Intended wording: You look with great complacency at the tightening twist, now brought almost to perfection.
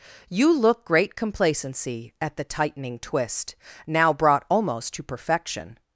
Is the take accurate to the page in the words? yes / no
no